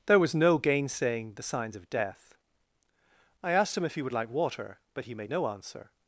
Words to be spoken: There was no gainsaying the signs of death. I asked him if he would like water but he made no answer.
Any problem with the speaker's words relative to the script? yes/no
no